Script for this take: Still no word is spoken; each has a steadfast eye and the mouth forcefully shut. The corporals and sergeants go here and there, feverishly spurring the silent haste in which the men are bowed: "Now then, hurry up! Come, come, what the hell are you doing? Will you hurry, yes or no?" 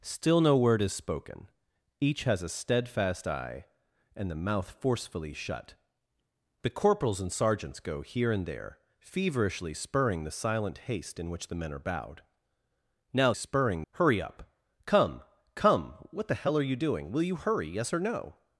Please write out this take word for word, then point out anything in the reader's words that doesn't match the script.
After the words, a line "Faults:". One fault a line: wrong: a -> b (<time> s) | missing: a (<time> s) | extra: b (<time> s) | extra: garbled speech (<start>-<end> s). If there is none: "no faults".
Still no word is spoken; each has a steadfast eye and the mouth forcefully shut. The corporals and sergeants go here and there, feverishly spurring the silent haste in which the men are bowed: "Now spurring, hurry up! Come, come, what the hell are you doing? Will you hurry, yes or no?"
Faults:
wrong: then -> spurring (13.3 s)